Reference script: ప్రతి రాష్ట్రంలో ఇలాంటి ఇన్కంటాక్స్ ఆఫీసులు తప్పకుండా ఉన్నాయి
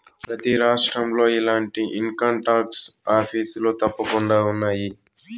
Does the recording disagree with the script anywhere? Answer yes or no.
no